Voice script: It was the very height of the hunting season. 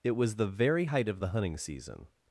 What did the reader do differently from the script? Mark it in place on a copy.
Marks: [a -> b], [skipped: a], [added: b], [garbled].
It was the very height of the hunting season.